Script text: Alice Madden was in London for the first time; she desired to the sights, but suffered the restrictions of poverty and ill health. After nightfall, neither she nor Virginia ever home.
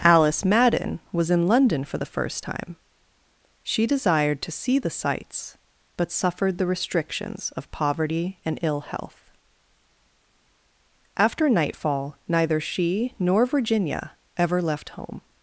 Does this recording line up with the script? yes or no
no